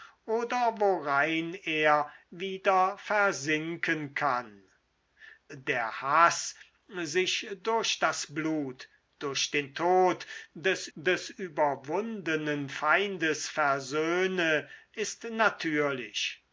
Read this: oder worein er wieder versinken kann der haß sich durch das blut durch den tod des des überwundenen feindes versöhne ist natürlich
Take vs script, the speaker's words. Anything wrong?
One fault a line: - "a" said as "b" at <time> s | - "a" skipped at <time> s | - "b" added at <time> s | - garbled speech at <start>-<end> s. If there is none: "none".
none